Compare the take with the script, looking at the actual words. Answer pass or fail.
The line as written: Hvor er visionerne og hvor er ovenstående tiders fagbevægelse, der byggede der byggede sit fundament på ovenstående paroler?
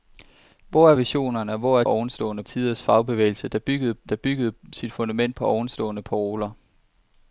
pass